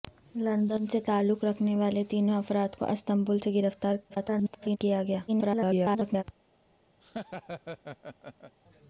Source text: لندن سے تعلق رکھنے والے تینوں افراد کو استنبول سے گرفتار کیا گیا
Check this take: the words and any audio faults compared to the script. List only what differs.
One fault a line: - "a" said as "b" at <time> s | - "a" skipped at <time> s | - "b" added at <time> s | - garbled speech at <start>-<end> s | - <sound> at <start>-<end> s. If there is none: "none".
- garbled speech at 4.1-4.8 s
- garbled speech at 5.3-6.2 s
- laugh at 7.0-8.5 s